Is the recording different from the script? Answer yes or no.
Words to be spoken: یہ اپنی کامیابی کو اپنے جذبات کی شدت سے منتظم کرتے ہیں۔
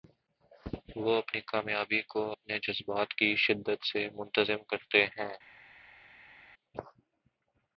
yes